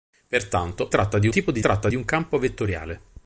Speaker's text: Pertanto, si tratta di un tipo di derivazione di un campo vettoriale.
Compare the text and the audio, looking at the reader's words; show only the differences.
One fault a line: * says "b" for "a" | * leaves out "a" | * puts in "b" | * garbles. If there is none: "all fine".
* leaves out "si"
* leaves out "un"
* says "tratta" for "derivazione"